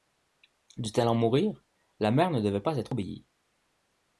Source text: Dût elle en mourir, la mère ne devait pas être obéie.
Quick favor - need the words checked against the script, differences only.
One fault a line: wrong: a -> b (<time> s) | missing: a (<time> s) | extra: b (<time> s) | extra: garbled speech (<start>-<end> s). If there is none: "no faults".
no faults